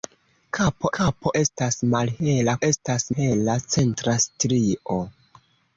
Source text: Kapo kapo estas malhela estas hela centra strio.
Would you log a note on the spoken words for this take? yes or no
no